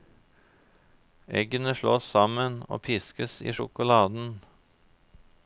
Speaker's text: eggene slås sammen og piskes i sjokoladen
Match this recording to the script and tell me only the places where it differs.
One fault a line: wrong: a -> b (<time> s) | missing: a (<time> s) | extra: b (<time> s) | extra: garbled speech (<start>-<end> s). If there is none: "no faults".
no faults